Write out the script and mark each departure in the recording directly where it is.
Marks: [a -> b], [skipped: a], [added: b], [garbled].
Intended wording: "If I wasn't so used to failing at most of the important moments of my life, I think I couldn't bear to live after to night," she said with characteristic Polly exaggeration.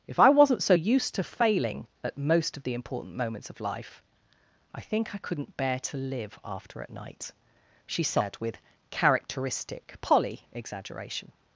"If I wasn't so used to failing at most of the important moments of [skipped: my] life, I think I couldn't bear to live after [to -> at] night," she said with characteristic Polly exaggeration.